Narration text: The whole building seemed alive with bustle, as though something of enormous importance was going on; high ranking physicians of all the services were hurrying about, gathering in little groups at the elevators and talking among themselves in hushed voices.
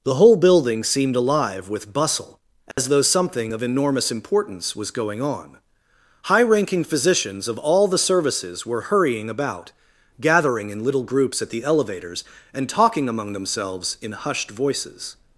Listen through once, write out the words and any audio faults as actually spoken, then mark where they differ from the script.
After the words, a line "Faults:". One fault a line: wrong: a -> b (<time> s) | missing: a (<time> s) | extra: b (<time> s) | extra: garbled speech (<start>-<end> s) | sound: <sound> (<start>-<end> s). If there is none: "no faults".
The whole building seemed alive with bustle, as though something of enormous importance was going on; high ranking physicians of all the services were hurrying about, gathering in little groups at the elevators and talking among themselves in hushed voices.
Faults:
sound: dropout (2.7-2.8 s)